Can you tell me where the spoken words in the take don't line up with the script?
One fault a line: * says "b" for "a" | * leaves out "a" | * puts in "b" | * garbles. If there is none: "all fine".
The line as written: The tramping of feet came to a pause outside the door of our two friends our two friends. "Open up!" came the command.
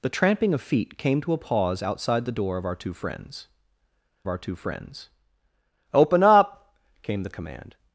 all fine